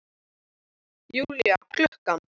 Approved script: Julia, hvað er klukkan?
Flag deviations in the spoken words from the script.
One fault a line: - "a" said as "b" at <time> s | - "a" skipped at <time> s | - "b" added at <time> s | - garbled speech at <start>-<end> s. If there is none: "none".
- "hvað" skipped at 1.6 s